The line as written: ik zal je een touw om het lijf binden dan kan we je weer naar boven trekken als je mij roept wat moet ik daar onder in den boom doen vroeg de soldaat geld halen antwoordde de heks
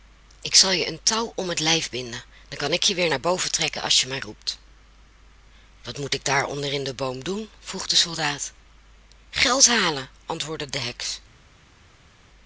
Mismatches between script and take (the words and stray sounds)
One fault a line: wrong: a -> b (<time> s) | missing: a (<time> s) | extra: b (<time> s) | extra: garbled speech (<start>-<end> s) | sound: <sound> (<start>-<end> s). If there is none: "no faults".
wrong: we -> ik (2.7 s)